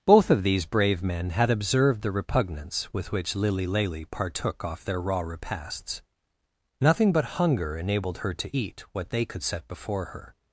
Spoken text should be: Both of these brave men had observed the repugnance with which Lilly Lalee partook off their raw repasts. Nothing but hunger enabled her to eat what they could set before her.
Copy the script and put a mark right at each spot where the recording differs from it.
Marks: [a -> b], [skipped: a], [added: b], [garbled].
Both of these brave men had observed the repugnance with which Lilly Lalee partook off their raw repasts. Nothing but hunger enabled her to eat what they could set before her.